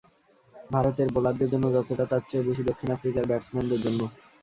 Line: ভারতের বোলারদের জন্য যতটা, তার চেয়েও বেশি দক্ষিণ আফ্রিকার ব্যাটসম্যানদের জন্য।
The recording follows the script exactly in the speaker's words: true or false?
true